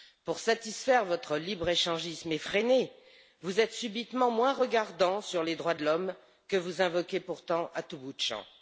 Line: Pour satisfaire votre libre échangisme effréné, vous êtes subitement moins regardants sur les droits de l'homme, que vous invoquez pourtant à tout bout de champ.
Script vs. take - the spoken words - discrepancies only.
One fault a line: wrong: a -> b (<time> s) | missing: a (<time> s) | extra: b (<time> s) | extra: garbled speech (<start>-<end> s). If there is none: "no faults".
no faults